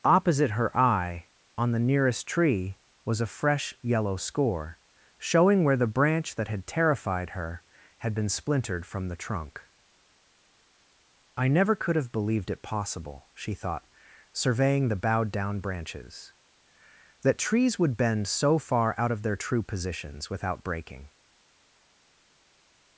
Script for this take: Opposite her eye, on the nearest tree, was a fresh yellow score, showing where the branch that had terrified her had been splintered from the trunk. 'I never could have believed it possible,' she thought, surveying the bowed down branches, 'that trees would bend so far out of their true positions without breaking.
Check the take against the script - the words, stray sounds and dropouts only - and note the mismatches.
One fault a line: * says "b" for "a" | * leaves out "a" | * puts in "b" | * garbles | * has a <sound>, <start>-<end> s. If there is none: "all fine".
all fine